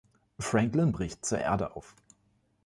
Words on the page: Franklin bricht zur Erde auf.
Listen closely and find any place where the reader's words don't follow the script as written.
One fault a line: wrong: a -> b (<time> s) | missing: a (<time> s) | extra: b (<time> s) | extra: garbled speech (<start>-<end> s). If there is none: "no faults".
no faults